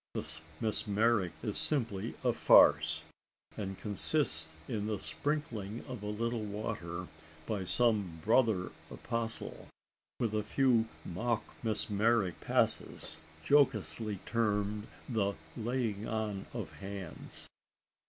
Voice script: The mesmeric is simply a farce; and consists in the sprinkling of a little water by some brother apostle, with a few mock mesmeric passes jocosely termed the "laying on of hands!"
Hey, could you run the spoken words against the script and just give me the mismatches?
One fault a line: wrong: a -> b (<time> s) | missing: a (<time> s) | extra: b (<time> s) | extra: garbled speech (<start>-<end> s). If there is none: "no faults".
no faults